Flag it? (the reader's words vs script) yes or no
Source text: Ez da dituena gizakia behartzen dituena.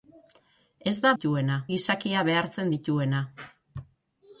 no